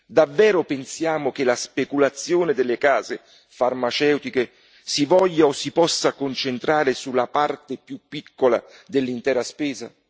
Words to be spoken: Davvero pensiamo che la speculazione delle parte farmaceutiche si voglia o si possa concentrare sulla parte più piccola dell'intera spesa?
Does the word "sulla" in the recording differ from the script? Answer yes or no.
no